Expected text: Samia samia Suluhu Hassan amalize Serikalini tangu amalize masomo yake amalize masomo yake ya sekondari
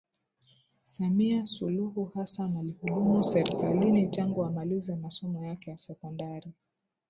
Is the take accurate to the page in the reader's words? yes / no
no